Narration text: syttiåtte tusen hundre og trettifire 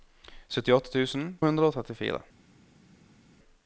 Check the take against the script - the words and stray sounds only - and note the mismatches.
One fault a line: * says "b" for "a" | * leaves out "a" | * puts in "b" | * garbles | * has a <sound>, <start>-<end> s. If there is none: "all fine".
all fine